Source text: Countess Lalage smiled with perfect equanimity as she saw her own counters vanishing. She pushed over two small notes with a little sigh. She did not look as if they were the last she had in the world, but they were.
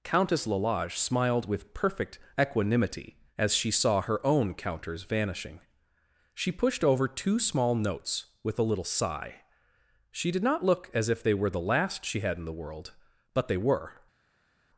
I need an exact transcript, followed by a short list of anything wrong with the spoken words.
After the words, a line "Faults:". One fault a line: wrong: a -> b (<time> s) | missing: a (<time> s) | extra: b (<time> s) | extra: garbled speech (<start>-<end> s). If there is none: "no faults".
Countess Lalage smiled with perfect equanimity as she saw her own counters vanishing. She pushed over two small notes with a little sigh. She did not look as if they were the last she had in the world, but they were.
Faults:
no faults